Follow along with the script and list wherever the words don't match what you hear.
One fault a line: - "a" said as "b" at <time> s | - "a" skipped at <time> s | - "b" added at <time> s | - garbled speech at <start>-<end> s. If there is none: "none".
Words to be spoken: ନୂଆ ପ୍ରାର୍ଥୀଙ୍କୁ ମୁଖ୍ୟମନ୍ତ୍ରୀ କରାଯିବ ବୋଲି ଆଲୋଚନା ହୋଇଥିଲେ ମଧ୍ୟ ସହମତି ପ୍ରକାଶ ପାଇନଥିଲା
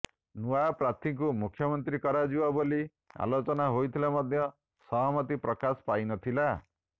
none